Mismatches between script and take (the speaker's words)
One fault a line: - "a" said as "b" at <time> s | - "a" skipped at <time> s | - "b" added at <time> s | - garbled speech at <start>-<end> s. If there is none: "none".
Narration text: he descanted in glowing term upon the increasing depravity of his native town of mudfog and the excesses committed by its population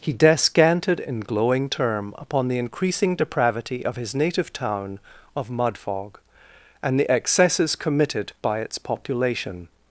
none